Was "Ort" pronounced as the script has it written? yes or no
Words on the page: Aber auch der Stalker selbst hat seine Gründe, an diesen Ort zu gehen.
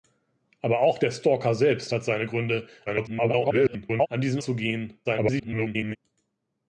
no